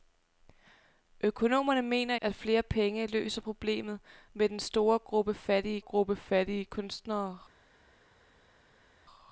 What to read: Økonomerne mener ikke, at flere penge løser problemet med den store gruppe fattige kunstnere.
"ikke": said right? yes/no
no